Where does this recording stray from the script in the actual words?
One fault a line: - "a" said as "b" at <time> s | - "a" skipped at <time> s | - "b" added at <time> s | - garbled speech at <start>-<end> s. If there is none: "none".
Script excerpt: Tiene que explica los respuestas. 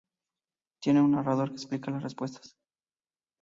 - "un narrador" added at 1.0 s
- "los" said as "las" at 1.9 s